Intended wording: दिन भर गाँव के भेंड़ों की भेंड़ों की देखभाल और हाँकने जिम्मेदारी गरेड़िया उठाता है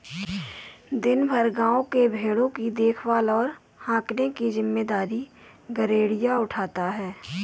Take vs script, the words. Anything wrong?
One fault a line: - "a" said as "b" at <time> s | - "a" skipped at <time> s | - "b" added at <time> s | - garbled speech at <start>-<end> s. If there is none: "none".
- "भेंड़ों की" skipped at 2.7 s
- "की" added at 4.3 s